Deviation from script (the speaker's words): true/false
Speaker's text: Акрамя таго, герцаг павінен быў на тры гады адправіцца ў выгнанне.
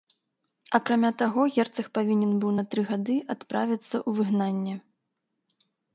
false